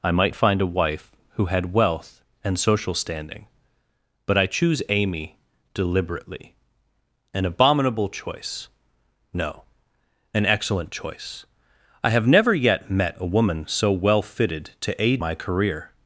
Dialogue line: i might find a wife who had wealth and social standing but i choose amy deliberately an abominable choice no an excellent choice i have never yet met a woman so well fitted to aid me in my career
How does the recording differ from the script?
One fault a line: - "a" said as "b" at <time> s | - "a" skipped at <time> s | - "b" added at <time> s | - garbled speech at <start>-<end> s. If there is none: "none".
- "me in" skipped at 15.2 s